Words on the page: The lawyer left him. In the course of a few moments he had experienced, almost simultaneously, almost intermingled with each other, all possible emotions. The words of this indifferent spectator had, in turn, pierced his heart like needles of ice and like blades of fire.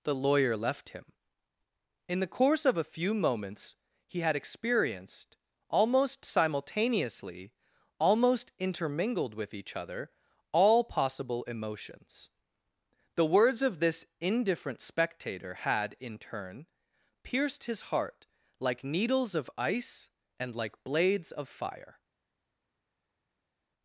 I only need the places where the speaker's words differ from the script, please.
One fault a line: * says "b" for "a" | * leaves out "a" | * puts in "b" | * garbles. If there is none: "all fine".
all fine